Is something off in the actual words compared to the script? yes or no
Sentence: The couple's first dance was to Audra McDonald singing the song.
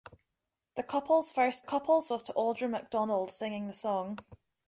yes